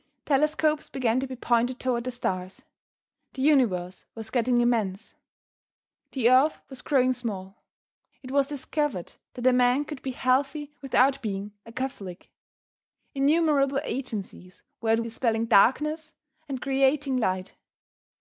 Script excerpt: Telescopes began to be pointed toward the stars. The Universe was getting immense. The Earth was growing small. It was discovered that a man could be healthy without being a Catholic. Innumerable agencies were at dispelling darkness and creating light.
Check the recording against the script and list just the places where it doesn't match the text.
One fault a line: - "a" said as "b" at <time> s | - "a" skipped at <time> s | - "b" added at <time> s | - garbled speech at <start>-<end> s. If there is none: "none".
none